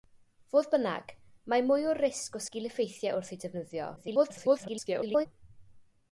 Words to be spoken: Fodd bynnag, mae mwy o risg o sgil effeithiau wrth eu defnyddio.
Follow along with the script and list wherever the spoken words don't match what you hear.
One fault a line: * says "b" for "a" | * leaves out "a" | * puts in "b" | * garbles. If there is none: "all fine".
* garbles